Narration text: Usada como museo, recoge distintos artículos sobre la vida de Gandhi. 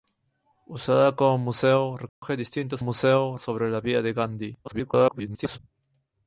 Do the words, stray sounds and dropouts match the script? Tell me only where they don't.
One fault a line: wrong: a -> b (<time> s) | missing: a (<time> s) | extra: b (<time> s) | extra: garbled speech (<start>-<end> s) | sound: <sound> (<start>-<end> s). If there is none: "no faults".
sound: dropout (2.1-2.2 s)
wrong: artículos -> museo (2.8 s)
extra: garbled speech (4.6-5.6 s)